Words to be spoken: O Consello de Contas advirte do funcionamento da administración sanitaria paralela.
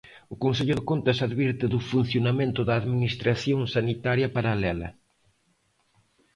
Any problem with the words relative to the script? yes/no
no